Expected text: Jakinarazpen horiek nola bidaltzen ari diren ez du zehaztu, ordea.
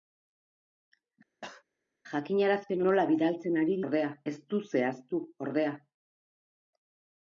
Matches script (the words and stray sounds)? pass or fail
fail